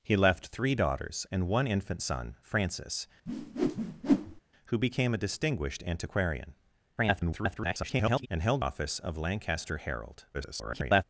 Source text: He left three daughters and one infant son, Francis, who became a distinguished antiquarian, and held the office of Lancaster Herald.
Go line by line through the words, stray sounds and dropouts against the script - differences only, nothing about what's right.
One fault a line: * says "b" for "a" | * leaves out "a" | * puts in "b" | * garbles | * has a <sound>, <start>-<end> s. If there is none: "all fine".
* has a whoosh, 3.3-4.4 s
* garbles
* leaves out "the"
* garbles